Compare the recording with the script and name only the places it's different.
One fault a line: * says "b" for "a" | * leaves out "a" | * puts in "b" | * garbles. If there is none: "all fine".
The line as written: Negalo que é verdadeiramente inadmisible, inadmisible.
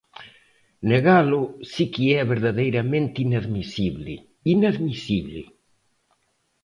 * puts in "si"